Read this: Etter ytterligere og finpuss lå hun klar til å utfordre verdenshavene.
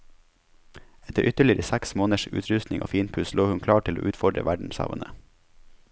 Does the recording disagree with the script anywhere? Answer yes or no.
yes